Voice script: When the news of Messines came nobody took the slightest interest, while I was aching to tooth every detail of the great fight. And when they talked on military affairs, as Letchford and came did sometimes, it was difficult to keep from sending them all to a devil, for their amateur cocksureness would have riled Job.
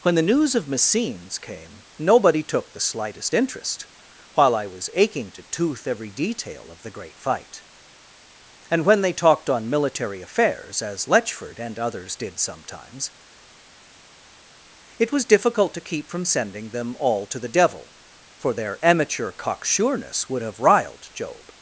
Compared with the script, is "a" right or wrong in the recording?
wrong